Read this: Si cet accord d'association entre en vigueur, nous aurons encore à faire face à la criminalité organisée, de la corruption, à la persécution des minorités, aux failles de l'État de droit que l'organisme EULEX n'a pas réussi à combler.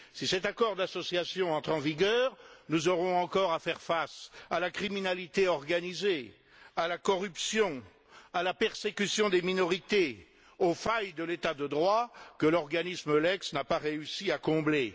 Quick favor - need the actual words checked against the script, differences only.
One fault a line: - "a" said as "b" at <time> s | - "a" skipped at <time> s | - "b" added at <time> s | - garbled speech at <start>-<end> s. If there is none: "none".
- "de" said as "à" at 6.8 s